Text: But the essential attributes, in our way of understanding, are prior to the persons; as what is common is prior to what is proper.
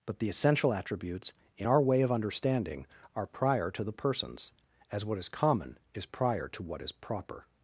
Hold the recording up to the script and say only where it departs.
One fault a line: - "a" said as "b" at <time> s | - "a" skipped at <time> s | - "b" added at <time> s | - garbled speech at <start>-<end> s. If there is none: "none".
none